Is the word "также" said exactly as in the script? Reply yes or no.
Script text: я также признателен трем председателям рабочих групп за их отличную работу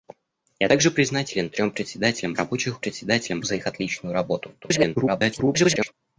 yes